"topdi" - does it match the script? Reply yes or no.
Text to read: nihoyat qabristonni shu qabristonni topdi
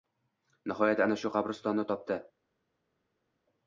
yes